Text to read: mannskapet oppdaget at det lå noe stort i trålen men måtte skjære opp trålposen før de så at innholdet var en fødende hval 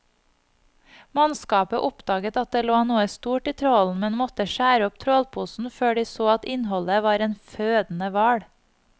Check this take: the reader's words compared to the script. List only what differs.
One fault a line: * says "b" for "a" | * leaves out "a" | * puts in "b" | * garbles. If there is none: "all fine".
all fine